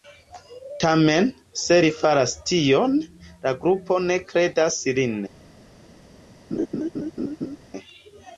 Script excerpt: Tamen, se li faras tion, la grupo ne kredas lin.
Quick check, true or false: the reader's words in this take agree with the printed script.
true